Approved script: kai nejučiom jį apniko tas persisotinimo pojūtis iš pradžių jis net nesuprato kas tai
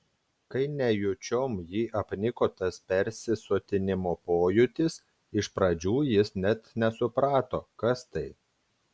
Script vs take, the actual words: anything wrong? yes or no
no